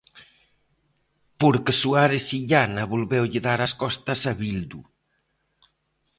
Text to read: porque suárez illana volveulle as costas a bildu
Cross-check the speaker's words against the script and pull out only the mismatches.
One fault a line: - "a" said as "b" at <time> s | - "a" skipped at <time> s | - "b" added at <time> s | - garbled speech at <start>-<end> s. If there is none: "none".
- "dar" added at 3.5 s